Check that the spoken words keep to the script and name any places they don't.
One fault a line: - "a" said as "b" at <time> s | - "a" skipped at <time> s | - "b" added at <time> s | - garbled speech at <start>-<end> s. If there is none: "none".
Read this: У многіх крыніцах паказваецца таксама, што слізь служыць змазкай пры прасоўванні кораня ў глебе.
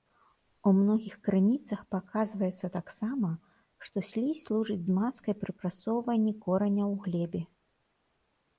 none